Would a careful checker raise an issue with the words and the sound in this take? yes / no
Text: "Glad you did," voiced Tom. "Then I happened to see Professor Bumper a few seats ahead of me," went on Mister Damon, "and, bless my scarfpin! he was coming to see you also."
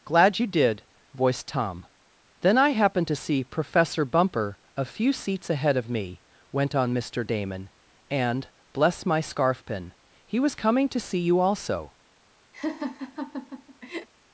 yes